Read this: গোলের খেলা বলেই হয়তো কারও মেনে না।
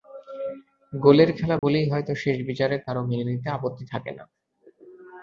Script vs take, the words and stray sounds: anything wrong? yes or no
yes